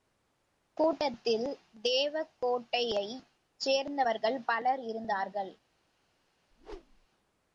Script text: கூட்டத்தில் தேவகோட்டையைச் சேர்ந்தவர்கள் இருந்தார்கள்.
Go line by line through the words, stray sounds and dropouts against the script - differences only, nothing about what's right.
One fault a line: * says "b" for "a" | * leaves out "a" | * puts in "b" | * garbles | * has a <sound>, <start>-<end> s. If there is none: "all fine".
* puts in "பலர்"
* has a whoosh, 6.5-7.1 s